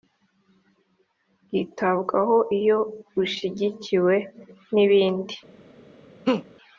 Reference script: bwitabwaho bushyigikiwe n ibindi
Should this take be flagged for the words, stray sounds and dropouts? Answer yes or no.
yes